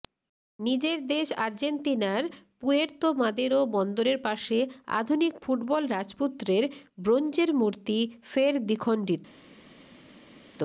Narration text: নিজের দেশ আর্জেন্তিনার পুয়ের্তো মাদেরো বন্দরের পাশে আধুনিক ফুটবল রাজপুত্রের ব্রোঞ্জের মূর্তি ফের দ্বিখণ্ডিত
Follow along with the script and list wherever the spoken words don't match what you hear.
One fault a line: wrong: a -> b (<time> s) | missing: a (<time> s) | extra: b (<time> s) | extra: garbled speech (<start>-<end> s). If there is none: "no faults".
no faults